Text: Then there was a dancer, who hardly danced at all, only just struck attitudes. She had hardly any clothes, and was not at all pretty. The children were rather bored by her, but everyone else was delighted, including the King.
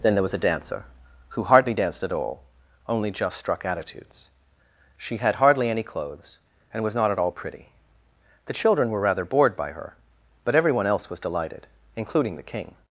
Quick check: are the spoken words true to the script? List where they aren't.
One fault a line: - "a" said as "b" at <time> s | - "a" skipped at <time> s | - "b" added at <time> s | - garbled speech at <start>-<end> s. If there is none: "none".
none